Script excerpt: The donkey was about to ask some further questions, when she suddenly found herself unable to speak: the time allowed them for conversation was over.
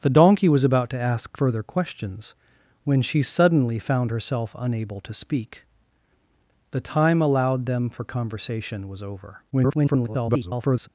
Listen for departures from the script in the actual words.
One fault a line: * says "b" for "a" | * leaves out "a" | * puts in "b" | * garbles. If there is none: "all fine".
* leaves out "some"
* garbles